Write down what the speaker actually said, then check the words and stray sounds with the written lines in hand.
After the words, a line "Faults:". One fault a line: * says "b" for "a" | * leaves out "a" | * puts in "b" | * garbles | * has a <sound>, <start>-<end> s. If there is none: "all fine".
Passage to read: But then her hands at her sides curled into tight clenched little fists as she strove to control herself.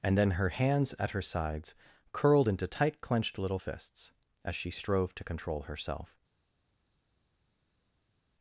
And then her hands at her sides curled into tight clenched little fists as she strove to control herself.
Faults:
* says "And" for "But"